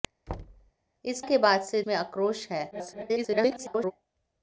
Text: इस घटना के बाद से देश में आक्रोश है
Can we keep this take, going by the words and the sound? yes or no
no